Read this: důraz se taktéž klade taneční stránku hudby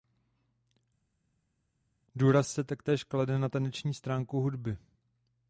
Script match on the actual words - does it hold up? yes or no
no